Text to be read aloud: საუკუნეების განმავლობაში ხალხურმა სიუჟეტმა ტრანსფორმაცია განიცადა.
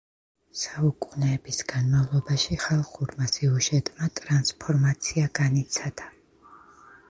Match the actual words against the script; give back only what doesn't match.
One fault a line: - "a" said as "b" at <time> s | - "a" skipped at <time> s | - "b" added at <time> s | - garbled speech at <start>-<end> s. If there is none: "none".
none